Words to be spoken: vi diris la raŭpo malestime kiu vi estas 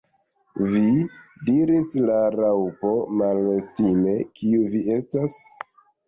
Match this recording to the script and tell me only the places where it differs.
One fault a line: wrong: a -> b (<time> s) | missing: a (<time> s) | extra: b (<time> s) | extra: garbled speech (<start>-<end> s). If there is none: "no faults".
no faults